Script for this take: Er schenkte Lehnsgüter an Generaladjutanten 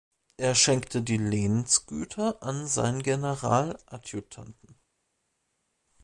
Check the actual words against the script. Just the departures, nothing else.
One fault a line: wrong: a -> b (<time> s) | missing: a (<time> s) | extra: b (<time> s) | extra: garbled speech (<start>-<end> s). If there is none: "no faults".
extra: die (1.0 s)
extra: seinen (2.7 s)